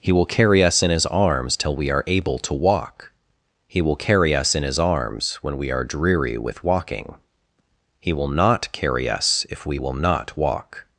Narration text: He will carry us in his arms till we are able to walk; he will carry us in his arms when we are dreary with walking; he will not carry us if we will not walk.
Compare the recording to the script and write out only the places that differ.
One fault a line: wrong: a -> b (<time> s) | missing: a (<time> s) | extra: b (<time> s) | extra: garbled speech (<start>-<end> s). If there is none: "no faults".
no faults